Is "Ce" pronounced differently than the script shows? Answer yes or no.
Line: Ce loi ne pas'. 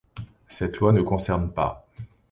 yes